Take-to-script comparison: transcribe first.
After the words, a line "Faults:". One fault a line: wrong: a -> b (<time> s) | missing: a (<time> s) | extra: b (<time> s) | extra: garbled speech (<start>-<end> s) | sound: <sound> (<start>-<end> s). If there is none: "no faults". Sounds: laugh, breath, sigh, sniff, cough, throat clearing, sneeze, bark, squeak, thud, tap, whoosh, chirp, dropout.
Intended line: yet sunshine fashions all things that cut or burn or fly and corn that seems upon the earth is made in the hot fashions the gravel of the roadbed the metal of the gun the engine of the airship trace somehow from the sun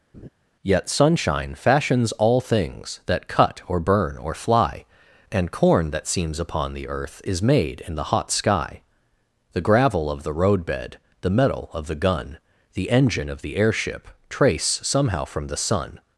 yet sunshine fashions all things that cut or burn or fly and corn that seems upon the earth is made in the hot sky the gravel of the roadbed the metal of the gun the engine of the airship trace somehow from the sun
Faults:
sound: laugh (0.1-0.3 s)
wrong: fashions -> sky (8.3 s)